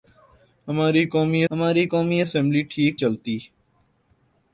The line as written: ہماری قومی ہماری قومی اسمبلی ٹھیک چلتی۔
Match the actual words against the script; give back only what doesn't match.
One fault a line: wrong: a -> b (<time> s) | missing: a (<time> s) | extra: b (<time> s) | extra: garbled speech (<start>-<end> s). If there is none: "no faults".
no faults